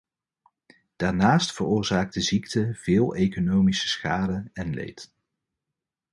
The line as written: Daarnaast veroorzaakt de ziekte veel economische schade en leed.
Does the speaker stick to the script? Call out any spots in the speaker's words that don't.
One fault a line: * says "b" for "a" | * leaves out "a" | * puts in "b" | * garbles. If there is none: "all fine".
all fine